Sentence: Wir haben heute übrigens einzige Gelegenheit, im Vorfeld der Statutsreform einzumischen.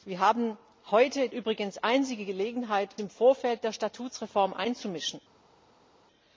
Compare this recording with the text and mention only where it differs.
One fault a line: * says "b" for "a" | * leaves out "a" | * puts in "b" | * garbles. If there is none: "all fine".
all fine